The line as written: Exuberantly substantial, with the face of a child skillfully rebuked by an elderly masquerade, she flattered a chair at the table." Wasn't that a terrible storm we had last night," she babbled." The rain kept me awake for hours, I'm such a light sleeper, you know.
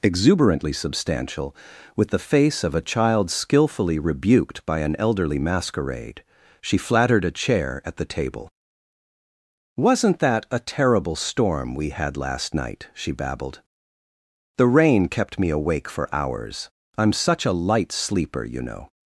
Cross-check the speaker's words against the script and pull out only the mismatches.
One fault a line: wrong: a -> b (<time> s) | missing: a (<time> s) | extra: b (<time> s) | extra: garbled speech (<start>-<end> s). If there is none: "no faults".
no faults